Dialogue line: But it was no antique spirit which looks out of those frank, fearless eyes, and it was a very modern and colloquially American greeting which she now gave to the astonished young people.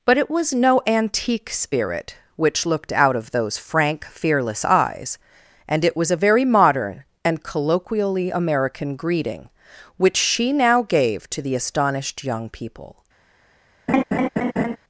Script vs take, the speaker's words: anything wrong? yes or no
yes